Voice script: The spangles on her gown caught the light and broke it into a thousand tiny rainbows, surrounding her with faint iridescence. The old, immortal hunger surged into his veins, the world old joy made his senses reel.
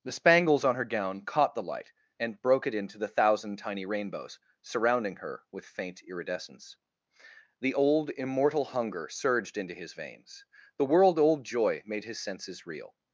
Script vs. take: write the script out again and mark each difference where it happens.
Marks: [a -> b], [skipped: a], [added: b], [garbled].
The spangles on her gown caught the light and broke it into [a -> the] thousand tiny rainbows, surrounding her with faint iridescence. The old, immortal hunger surged into his veins, the world old joy made his senses reel.